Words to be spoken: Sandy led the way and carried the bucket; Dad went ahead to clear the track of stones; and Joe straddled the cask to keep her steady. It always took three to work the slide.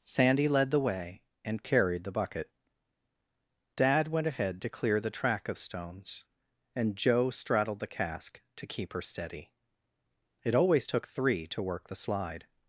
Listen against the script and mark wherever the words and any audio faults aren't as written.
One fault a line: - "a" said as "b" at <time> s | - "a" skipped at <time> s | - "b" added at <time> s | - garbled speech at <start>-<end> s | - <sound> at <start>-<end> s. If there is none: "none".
none